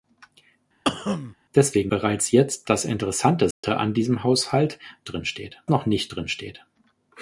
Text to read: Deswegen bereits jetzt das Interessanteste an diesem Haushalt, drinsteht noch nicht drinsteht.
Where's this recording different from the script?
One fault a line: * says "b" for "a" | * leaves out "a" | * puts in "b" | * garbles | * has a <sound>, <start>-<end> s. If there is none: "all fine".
* has a cough, 0.9-1.4 s
* has a dropout, 3.5-3.6 s